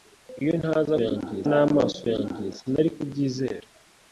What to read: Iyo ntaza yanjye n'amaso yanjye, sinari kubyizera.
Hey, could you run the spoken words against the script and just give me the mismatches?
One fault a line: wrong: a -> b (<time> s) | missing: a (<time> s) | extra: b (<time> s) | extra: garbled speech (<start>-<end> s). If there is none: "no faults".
no faults